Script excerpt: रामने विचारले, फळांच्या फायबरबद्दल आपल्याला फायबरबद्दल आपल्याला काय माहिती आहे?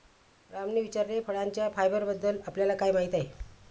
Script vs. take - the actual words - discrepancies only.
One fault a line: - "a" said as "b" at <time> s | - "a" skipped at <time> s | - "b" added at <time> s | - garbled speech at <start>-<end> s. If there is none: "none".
- "फायबरबद्दल आपल्याला" skipped at 2.7 s